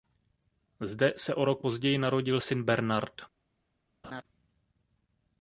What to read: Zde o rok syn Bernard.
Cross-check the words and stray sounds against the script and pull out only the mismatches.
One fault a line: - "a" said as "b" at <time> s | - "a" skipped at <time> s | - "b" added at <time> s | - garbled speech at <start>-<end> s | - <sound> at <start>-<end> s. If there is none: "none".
- "se" added at 1.2 s
- "později narodil" added at 1.6 s
- laugh at 4.0-4.2 s